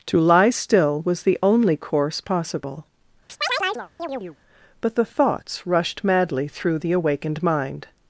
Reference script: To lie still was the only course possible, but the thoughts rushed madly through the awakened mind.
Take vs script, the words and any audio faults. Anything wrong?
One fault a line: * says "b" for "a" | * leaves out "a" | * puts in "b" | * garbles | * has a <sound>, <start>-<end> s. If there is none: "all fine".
* has a chirp, 3.3-4.4 s